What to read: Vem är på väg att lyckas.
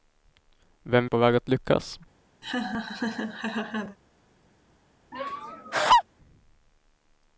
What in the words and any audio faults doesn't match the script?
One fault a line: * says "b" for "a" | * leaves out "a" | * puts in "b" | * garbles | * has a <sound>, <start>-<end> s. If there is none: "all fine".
* has a laugh, 2.4-4.0 s
* has a laugh, 5.1-6.0 s